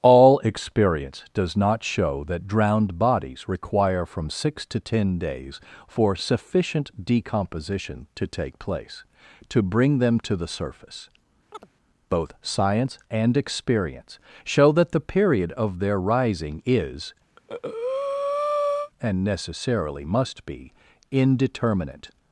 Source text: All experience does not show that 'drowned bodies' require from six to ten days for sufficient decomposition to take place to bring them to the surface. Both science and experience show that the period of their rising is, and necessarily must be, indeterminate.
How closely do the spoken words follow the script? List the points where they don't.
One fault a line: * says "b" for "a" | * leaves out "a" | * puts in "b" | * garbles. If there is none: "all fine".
all fine